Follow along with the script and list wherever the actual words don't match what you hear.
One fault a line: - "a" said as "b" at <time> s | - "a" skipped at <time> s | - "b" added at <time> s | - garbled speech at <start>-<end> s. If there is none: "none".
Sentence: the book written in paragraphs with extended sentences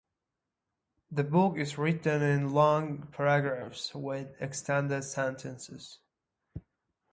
- "is" added at 1.6 s
- "long" added at 2.5 s